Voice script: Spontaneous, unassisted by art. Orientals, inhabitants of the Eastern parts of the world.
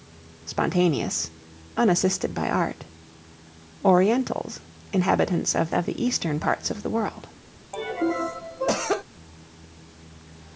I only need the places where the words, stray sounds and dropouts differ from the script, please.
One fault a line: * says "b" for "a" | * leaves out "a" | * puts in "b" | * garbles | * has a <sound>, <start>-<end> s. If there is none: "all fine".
* puts in "of"
* has a cough, 7.7-9.0 s